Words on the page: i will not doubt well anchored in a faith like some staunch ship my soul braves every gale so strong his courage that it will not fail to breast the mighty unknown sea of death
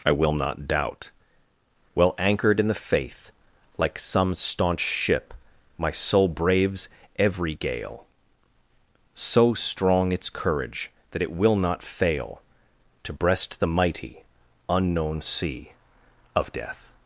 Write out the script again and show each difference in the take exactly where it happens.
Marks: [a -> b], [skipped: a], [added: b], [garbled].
i will not doubt well anchored in [a -> the] faith like some staunch ship my soul braves every gale so strong [his -> its] courage that it will not fail to breast the mighty unknown sea of death